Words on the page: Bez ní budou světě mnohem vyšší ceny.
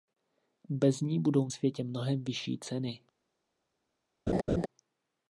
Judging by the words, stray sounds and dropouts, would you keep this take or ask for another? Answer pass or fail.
fail